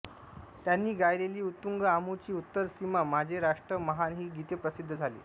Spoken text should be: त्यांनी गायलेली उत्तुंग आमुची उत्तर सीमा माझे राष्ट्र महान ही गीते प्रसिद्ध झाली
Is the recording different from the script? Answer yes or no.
no